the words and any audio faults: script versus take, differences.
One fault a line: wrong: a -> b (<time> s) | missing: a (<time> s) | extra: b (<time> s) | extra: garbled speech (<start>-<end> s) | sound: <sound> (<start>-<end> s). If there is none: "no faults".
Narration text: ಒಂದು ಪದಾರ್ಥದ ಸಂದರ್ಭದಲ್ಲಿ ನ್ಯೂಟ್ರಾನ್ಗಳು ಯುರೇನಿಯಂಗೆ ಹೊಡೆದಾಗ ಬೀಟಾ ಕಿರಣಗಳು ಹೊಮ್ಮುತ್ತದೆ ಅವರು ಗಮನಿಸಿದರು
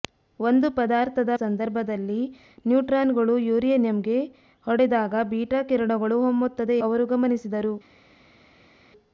no faults